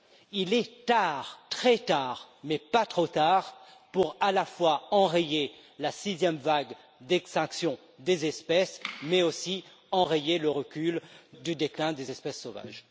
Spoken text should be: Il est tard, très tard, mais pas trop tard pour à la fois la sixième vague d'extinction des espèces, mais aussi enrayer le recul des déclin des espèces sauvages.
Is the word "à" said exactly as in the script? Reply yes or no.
yes